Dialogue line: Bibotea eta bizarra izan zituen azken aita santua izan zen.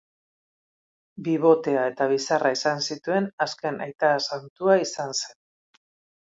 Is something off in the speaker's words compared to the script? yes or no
no